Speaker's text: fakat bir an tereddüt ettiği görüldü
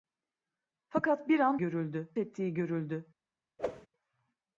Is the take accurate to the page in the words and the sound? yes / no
no